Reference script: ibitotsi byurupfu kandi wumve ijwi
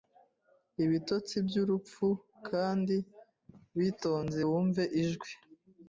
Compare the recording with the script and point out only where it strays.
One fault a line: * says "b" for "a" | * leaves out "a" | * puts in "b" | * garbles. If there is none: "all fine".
* puts in "witonze"